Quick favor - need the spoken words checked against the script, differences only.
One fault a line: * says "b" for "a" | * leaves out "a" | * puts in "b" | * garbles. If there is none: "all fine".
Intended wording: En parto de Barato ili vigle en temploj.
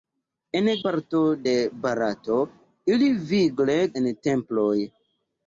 all fine